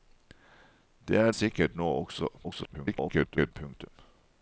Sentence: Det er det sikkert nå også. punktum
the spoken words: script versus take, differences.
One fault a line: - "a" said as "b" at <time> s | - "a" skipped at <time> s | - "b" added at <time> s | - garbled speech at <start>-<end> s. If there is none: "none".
- "det" skipped at 1.3 s
- garbled speech at 2.4-3.5 s